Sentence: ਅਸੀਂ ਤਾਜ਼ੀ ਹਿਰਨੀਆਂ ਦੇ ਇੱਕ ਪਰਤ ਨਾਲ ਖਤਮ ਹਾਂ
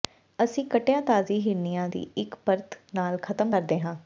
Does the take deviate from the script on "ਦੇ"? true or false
true